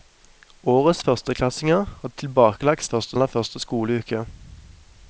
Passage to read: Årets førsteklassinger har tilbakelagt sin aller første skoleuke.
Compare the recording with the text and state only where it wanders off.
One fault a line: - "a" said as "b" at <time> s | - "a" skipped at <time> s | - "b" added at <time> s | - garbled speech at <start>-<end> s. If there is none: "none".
- "sin" said as "første" at 2.9 s